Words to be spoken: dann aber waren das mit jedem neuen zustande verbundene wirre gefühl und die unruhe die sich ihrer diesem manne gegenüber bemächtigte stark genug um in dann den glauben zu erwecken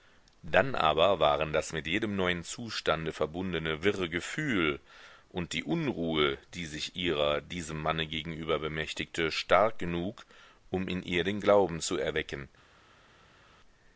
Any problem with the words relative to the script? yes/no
yes